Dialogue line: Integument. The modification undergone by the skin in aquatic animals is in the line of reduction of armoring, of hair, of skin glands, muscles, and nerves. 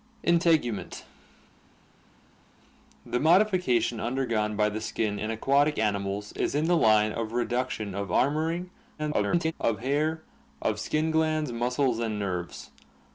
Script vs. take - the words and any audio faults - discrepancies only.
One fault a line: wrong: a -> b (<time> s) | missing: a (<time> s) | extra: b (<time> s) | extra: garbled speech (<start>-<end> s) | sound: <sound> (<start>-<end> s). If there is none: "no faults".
extra: garbled speech (9.0-9.5 s)